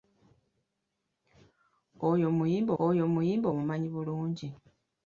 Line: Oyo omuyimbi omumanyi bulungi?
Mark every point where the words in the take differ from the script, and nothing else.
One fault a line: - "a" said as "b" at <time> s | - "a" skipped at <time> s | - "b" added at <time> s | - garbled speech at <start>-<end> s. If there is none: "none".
- "oyo omuyimbi" added at 2.8 s